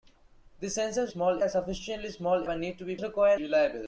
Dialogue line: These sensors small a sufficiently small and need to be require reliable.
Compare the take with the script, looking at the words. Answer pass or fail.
pass